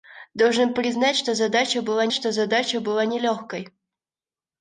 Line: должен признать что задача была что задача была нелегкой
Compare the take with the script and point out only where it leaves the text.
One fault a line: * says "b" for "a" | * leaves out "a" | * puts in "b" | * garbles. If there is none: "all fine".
all fine